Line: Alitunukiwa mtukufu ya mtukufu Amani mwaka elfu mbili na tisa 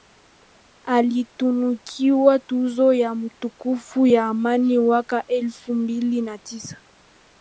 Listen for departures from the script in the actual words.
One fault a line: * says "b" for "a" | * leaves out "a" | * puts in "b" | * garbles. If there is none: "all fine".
* says "tuzo" for "mtukufu"
* puts in "ya"